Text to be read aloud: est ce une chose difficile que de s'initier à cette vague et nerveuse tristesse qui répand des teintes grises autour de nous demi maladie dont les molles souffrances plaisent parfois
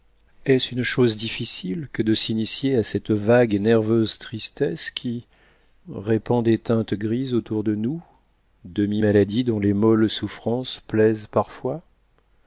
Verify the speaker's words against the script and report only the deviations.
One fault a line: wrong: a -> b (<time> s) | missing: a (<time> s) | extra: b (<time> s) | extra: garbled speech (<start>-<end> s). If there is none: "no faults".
no faults